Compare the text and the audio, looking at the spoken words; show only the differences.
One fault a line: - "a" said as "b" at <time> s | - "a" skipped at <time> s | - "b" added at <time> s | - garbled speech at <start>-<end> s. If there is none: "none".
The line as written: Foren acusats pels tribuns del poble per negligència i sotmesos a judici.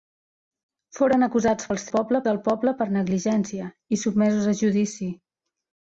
- "tribuns" said as "poble" at 2.0 s